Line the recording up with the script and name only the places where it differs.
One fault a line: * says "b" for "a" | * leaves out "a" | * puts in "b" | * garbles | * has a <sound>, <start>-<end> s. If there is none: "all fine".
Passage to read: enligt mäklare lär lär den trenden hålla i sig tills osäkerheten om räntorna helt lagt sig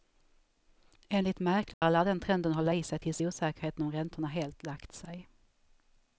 * has a dropout, 1.7-1.8 s
* leaves out "lär"